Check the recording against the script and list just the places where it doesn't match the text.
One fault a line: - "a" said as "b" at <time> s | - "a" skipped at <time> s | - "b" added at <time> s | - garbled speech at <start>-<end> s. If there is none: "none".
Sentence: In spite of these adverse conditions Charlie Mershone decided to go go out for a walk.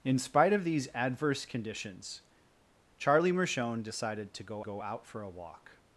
none